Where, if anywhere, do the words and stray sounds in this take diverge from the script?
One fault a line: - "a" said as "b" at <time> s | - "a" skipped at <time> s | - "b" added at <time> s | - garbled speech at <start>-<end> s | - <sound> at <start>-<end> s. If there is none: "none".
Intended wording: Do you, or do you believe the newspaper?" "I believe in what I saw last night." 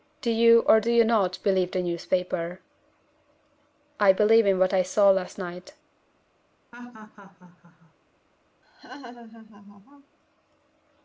- "not" added at 1.1 s
- laugh at 6.7-7.9 s
- laugh at 8.6-10.2 s